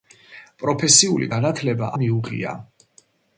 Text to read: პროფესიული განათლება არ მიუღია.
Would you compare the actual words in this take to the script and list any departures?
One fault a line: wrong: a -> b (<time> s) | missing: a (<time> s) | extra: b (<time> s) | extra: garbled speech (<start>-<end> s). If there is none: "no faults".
missing: არ (1.9 s)